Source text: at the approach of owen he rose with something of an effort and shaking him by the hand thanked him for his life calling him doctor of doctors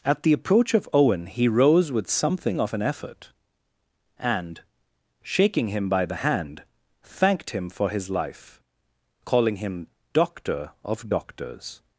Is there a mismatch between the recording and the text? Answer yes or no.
no